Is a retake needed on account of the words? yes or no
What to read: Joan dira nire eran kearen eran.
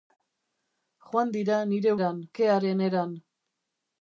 no